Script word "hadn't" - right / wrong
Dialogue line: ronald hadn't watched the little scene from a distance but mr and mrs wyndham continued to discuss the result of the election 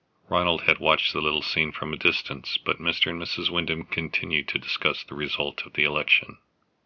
wrong